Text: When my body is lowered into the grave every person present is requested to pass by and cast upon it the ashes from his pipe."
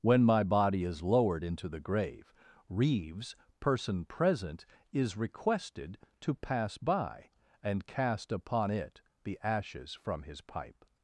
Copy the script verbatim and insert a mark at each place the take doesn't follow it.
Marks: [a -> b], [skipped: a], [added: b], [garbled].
When my body is lowered into the grave [every -> reeves] person present is requested to pass by and cast upon it the ashes from his pipe."